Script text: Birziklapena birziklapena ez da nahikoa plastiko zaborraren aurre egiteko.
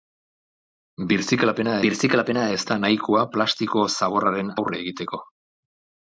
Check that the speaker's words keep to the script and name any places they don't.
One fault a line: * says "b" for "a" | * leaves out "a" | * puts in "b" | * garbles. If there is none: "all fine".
all fine